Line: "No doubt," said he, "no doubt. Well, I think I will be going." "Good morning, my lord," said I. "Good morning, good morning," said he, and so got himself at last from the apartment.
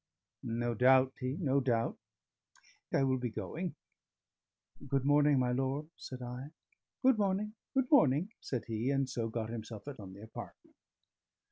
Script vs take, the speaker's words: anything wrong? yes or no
yes